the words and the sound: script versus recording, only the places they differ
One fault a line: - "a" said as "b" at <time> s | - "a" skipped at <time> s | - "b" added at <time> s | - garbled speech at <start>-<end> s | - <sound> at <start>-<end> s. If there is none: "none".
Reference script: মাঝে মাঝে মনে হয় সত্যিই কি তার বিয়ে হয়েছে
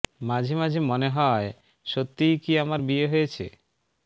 - "তার" said as "আমার" at 2.6 s